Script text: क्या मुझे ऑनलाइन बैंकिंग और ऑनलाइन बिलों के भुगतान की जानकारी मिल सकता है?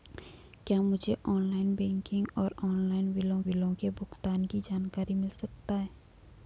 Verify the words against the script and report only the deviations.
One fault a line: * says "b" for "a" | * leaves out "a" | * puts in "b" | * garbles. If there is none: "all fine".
* puts in "बिलों"